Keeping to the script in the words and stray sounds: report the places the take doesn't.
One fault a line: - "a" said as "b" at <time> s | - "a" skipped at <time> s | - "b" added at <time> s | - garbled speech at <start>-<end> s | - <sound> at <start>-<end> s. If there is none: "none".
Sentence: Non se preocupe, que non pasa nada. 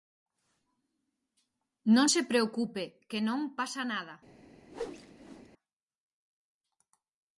- whoosh at 4.7-5.5 s